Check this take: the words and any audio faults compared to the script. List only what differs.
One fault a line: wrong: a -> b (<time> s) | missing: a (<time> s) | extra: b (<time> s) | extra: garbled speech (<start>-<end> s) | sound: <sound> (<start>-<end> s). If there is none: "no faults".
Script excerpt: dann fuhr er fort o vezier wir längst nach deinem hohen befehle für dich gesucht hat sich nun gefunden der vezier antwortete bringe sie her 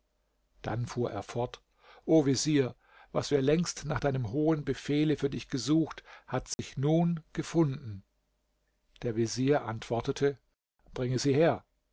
extra: was (3.1 s)
sound: dropout (6.5-6.6 s)